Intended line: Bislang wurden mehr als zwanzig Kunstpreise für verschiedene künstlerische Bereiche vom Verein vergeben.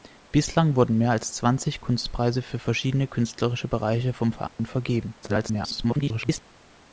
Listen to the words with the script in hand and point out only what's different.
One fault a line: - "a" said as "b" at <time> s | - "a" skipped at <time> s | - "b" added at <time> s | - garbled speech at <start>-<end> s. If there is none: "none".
- garbled speech at 5.2-6.4 s